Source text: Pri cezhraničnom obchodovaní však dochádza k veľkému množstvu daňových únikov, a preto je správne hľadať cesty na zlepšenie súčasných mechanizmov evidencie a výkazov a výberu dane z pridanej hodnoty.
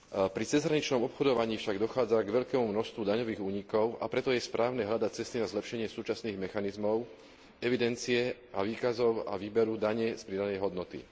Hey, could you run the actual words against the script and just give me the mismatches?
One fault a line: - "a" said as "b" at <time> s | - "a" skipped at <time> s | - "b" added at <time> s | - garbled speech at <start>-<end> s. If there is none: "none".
none